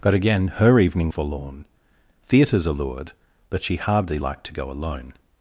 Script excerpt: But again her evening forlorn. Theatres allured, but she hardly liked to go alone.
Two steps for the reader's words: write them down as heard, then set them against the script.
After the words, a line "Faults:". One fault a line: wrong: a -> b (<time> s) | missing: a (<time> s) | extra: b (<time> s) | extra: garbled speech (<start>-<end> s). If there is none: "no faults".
But again her evening forlorn. Theatres allured, but she hardly liked to go alone.
Faults:
no faults